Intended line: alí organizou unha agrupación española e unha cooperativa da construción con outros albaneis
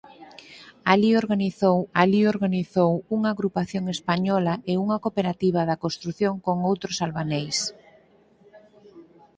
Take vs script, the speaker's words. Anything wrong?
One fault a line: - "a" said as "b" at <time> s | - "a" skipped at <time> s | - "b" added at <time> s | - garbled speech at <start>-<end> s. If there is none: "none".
- "alí organizou" added at 2.0 s